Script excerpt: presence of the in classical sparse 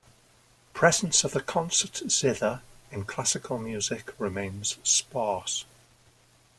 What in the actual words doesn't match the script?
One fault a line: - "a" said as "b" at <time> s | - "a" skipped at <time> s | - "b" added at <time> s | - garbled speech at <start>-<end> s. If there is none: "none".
- "concert zither" added at 1.4 s
- "music remains" added at 3.7 s